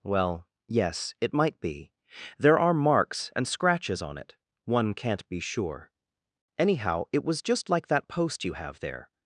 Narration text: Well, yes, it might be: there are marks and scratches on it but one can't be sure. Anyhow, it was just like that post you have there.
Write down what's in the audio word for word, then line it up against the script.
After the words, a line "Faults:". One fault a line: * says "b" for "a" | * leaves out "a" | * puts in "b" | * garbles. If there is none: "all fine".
Well, yes, it might be: there are marks and scratches on it one can't be sure. Anyhow, it was just like that post you have there.
Faults:
* leaves out "but"